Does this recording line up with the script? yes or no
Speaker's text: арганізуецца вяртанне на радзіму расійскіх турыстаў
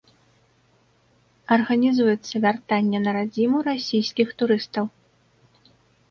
yes